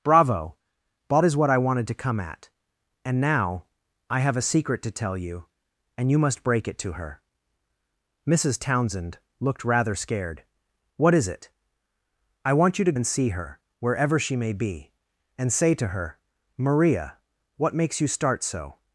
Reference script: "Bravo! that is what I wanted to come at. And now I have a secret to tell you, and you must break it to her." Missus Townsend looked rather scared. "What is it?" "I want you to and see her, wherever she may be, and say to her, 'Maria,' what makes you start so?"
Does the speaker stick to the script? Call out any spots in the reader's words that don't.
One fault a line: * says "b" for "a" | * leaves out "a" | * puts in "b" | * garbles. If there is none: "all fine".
all fine